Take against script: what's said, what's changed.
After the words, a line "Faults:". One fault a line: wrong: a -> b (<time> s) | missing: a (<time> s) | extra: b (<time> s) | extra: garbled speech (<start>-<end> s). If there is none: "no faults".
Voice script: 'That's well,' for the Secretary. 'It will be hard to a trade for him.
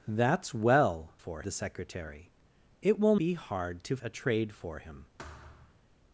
'That's well,' for the Secretary. 'It will be hard to a trade for him.
Faults:
no faults